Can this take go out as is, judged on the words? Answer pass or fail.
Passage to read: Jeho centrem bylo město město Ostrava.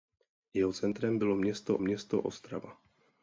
pass